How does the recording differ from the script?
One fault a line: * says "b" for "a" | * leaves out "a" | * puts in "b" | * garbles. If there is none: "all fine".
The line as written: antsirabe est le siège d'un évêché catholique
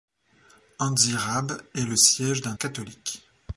* leaves out "évêché"